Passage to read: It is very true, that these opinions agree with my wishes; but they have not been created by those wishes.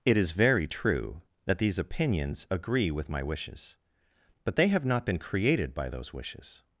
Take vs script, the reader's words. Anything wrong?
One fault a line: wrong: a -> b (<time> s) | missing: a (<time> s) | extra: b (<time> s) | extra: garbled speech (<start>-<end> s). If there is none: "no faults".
no faults